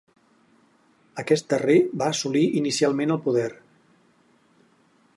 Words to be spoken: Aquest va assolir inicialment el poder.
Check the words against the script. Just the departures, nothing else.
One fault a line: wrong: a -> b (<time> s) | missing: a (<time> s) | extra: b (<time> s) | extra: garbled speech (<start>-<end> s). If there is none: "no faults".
extra: darrer (1.5 s)